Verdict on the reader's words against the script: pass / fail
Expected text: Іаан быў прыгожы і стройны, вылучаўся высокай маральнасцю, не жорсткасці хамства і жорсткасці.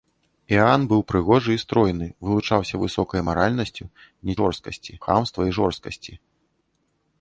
pass